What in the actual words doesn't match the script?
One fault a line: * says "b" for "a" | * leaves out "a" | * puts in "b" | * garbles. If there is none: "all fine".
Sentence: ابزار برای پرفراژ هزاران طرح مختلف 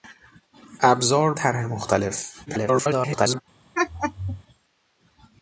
* leaves out "برای پرفراژ هزاران"
* garbles